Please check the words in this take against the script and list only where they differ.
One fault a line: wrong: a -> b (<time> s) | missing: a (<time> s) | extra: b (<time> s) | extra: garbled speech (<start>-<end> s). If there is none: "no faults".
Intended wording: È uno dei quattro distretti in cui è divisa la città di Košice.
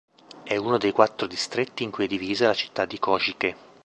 no faults